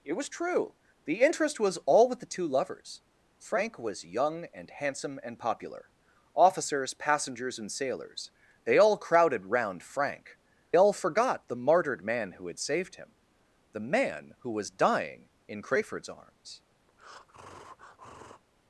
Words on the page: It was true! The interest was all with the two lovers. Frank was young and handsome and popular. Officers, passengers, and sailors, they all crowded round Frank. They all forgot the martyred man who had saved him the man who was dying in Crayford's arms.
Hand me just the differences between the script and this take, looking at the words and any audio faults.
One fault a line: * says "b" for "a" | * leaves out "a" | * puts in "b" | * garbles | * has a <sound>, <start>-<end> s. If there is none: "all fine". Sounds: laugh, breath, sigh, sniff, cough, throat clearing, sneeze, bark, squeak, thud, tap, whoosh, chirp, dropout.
* leaves out "They"
* has a breath, 16.9-18.4 s